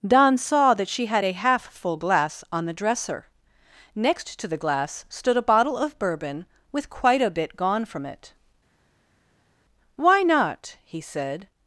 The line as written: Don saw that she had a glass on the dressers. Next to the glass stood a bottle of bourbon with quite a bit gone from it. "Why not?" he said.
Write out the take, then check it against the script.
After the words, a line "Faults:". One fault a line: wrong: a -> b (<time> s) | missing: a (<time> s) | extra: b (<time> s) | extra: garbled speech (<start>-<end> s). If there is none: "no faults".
Don saw that she had a half full glass on the dresser. Next to the glass stood a bottle of bourbon with quite a bit gone from it. "Why not?" he said.
Faults:
extra: half full (1.3 s)
wrong: dressers -> dresser (2.7 s)